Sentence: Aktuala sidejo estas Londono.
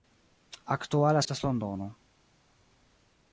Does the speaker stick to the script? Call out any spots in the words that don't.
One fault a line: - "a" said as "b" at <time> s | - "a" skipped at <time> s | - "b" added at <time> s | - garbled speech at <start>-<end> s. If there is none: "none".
- "sidejo" skipped at 1.2 s